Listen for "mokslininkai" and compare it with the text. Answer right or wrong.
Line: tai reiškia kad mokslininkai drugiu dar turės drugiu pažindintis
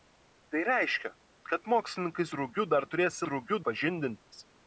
right